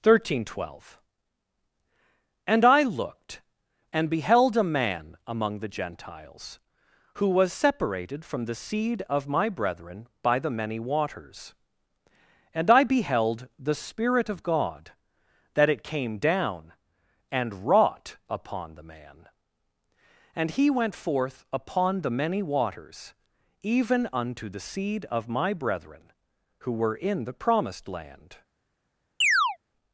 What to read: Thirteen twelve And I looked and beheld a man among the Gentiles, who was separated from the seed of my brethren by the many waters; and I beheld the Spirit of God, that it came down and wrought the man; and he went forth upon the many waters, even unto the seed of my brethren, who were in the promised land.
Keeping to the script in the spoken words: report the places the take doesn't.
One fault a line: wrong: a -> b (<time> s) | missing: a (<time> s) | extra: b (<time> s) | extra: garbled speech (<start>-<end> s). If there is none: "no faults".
extra: upon (18.3 s)